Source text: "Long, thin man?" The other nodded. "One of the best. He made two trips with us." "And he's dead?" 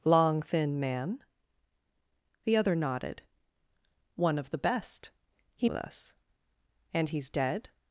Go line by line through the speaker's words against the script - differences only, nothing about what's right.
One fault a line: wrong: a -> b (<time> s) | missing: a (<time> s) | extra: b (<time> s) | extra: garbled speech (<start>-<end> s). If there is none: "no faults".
missing: made two trips (5.7 s)